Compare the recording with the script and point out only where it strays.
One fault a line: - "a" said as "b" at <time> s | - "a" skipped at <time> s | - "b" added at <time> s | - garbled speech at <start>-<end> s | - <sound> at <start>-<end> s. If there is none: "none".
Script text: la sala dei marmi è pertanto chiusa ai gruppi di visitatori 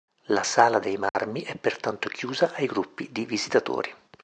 - dropout at 1.1-1.1 s